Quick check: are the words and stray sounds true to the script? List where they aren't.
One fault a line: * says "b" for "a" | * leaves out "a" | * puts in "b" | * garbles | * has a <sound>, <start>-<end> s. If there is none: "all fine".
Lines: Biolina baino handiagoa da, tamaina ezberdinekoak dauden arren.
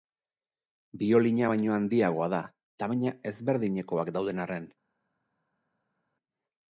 all fine